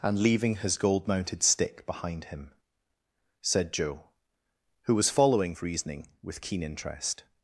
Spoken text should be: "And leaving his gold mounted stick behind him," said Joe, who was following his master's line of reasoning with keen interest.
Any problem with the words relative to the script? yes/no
yes